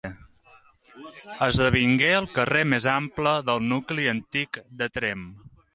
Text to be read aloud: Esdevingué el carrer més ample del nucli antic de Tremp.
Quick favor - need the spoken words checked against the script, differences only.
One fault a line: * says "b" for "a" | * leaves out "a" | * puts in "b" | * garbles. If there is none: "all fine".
all fine